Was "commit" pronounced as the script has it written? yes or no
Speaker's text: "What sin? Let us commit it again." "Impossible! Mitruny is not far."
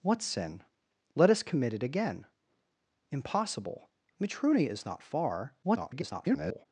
yes